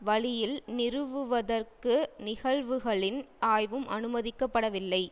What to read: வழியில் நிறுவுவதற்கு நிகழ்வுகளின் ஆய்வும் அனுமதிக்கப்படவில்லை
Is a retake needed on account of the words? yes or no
no